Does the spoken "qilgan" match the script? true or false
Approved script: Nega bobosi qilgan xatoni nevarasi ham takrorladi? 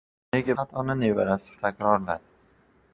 false